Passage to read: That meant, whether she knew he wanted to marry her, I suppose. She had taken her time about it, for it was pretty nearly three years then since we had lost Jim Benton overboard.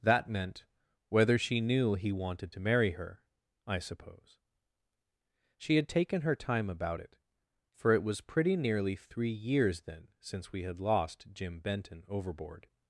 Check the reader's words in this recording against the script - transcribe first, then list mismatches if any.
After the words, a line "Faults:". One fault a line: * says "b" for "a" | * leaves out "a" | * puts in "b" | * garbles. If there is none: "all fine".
That meant, whether she knew he wanted to marry her, I suppose. She had taken her time about it, for it was pretty nearly three years then since we had lost Jim Benton overboard.
Faults:
all fine